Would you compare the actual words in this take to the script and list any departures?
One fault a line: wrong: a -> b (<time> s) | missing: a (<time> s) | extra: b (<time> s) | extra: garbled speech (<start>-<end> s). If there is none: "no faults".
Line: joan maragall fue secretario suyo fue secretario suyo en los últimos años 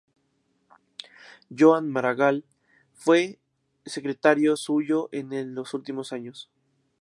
missing: fue secretario suyo (5.1 s)